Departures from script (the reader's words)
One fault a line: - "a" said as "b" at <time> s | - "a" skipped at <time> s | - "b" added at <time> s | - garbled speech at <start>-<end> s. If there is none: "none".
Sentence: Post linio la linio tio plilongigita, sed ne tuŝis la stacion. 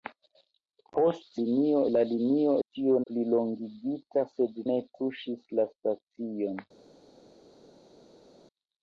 none